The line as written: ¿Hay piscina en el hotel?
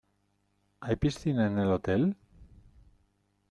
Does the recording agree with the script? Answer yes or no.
yes